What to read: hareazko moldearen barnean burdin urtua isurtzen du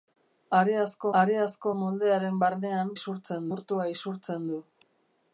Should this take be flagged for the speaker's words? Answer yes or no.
yes